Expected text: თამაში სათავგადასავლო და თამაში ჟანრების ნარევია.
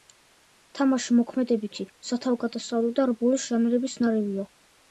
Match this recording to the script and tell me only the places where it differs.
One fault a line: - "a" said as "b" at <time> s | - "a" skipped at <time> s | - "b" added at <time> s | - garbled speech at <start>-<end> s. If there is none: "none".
- "მოქმედებითი" added at 1.2 s
- "თამაში" said as "რბოლის" at 3.1 s